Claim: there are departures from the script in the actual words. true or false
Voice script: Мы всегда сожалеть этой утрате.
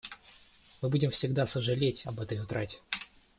true